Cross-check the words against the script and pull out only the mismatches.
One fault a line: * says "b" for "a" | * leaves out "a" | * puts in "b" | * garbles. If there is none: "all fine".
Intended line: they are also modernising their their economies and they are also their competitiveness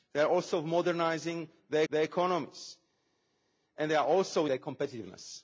all fine